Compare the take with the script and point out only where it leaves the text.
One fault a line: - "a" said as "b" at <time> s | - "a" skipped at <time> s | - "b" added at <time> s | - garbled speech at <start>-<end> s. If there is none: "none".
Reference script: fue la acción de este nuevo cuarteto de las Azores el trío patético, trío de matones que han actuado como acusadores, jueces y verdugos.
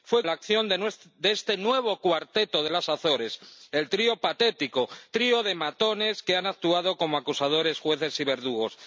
none